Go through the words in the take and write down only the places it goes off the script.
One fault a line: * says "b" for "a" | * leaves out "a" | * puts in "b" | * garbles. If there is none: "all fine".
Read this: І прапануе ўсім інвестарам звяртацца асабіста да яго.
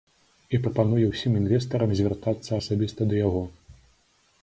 all fine